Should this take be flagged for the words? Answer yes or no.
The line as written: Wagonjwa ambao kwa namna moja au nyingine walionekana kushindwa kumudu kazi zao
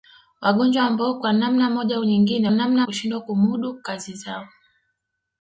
yes